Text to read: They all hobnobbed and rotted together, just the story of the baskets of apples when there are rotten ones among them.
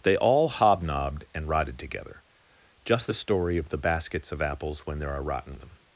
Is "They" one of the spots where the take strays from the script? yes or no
no